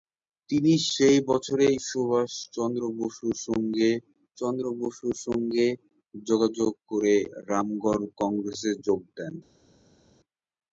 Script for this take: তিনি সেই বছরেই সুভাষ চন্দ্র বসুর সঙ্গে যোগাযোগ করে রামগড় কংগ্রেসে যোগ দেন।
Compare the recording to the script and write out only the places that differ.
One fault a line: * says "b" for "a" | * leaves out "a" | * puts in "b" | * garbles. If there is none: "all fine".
* puts in "চন্দ্র বসুর সঙ্গে"